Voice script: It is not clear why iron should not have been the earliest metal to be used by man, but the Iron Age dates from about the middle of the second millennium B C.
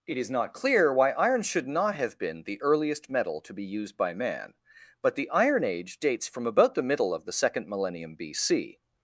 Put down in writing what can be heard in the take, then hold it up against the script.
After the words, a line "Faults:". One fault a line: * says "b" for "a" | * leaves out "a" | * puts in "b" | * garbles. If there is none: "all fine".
It is not clear why iron should not have been the earliest metal to be used by man, but the Iron Age dates from about the middle of the second millennium B C.
Faults:
all fine